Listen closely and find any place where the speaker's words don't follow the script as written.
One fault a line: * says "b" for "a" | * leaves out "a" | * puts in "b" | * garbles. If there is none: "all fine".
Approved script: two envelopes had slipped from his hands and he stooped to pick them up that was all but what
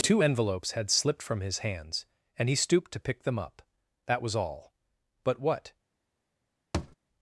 all fine